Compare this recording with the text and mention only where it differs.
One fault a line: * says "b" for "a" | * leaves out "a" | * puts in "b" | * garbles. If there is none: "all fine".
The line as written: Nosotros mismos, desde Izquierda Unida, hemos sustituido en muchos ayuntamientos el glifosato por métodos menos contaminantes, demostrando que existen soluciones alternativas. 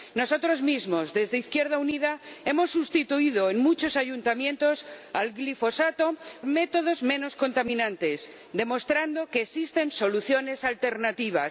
* leaves out "por"